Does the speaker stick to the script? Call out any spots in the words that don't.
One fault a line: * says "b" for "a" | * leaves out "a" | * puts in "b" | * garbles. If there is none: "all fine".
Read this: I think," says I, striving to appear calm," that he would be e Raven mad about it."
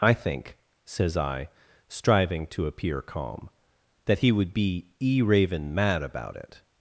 all fine